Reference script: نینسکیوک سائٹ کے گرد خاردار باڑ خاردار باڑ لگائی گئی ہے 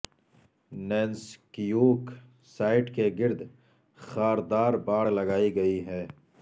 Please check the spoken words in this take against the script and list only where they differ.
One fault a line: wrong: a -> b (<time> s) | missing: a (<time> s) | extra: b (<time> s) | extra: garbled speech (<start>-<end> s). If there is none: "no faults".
missing: خاردار باڑ (5.0 s)